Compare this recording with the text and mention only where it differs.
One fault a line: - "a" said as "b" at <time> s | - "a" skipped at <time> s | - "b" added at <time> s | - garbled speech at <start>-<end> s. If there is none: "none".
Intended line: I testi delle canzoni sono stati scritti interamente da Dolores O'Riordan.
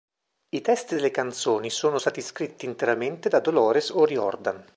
none